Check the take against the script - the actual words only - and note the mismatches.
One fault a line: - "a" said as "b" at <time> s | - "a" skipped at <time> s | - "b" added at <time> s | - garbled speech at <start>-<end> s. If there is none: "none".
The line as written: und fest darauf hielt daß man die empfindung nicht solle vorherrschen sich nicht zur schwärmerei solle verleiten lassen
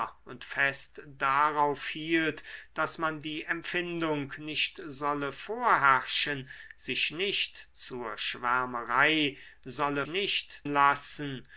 - "verleiten" said as "nicht" at 10.1 s